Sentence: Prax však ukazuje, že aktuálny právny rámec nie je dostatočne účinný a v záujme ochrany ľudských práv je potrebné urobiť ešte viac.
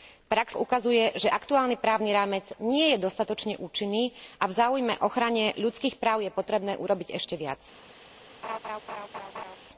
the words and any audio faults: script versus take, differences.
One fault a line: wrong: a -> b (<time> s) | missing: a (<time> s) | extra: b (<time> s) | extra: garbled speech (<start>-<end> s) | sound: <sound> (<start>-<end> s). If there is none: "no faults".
missing: však (0.6 s)
sound: laugh (8.4-9.6 s)